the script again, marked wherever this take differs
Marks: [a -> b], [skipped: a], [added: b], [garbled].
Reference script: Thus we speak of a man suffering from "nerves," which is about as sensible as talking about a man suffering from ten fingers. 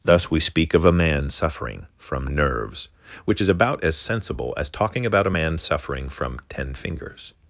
Thus we speak of a man suffering from "nerves," which is about as sensible as talking about a man suffering from ten fingers.